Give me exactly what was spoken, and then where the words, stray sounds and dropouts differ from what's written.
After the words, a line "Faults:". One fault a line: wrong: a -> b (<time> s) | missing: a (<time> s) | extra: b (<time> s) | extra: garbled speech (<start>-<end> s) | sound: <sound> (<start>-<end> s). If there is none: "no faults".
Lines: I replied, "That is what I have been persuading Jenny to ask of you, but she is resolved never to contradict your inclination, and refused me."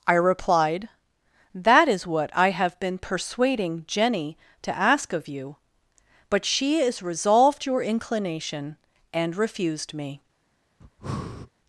I replied, "That is what I have been persuading Jenny to ask of you, but she is resolved your inclination, and refused me."
Faults:
missing: never to contradict (7.6 s)
sound: breath (10.8-11.5 s)